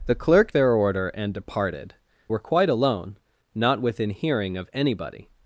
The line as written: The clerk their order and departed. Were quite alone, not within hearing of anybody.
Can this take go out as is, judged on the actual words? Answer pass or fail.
pass